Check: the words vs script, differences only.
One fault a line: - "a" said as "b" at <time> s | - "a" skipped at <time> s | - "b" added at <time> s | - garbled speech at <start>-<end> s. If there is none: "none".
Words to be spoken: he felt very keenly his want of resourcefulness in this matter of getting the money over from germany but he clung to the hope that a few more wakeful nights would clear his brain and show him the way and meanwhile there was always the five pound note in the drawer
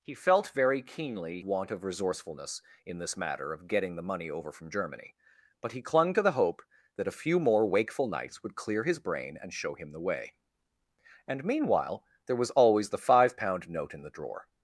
- "his" skipped at 1.4 s